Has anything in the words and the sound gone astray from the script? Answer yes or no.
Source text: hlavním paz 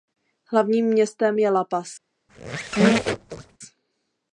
yes